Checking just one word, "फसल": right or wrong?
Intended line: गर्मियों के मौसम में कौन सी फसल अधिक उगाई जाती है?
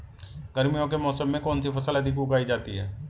right